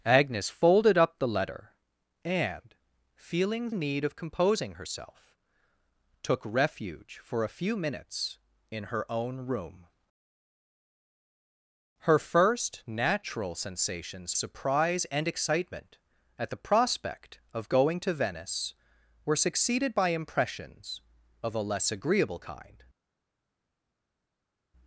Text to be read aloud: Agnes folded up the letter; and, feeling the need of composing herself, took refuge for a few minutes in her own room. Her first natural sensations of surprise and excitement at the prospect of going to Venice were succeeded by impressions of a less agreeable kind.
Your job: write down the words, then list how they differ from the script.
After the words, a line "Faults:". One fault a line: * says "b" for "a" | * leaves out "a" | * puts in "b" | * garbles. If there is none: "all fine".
Agnes folded up the letter; and, feeling need of composing herself, took refuge for a few minutes in her own room. Her first natural sensations surprise and excitement at the prospect of going to Venice were succeeded by impressions of a less agreeable kind.
Faults:
* leaves out "the"
* leaves out "of"